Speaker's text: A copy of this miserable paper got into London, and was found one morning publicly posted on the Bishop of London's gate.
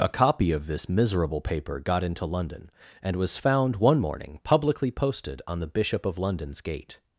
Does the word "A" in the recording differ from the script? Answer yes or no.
no